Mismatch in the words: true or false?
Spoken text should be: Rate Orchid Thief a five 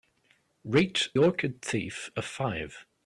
false